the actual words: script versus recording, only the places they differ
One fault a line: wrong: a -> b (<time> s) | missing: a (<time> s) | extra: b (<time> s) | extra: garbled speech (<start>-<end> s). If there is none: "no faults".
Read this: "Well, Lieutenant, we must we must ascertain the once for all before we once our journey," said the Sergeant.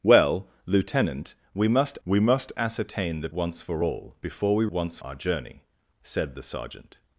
no faults